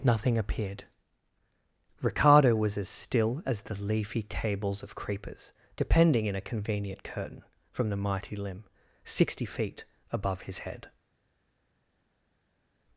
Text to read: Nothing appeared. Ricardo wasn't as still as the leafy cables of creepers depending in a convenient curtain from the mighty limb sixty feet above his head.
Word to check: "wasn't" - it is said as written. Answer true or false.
false